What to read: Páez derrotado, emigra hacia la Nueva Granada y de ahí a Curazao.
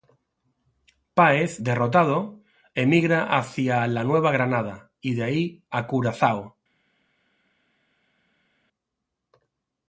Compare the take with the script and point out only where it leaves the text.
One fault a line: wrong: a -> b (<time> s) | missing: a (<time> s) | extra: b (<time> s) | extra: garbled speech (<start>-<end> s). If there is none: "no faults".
no faults